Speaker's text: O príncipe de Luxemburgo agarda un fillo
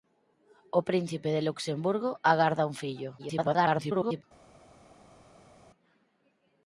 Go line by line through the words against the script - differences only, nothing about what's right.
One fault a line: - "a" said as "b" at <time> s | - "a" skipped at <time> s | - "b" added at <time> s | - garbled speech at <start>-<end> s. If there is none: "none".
- garbled speech at 3.2-4.2 s